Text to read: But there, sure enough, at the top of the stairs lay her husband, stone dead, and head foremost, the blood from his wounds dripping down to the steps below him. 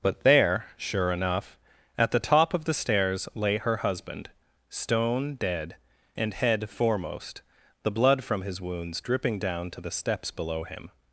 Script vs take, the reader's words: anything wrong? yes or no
no